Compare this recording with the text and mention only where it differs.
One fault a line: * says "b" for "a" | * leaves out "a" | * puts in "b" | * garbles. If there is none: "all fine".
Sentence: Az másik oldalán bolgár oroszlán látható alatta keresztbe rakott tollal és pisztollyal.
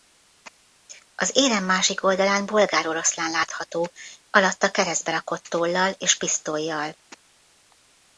* puts in "érem"